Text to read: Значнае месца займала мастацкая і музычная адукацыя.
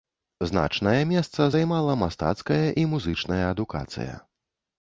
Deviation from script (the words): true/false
false